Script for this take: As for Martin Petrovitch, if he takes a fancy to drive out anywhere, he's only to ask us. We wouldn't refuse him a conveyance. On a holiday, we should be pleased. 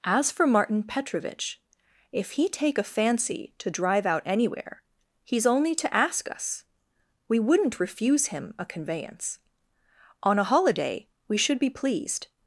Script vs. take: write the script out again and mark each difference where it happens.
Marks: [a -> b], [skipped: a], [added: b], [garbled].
As for Martin Petrovitch, if he [takes -> take] a fancy to drive out anywhere, he's only to ask us. We wouldn't refuse him a conveyance. On a holiday, we should be pleased.